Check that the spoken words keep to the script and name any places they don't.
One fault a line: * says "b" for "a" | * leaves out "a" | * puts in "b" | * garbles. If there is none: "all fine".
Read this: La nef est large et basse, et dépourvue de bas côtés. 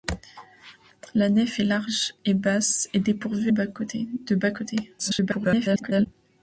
* leaves out "de"
* garbles